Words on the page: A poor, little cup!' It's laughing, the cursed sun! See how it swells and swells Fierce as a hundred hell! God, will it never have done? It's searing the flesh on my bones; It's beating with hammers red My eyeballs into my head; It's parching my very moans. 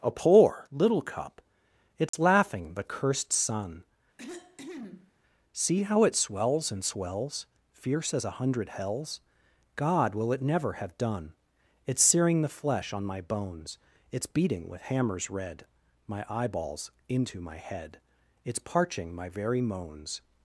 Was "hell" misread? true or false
true